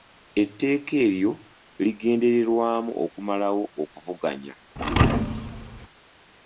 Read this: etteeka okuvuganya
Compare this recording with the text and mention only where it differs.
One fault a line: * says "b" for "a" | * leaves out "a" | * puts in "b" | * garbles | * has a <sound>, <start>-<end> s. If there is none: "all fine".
* puts in "eryo ligendererwamu okumalawo"
* has a thud, 4.8-5.9 s